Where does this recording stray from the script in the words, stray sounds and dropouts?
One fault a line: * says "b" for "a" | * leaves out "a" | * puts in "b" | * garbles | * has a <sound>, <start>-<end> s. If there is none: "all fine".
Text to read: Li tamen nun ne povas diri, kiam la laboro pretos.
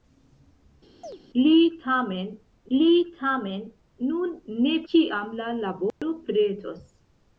* has a chirp, 1.0-1.2 s
* puts in "li tamen"
* leaves out "povas diri"
* has a dropout, 5.9-6.0 s